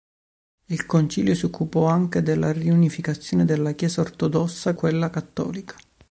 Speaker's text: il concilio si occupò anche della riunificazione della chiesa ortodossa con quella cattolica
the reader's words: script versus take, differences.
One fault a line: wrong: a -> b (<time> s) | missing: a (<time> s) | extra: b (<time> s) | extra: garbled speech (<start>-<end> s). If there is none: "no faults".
missing: con (4.7 s)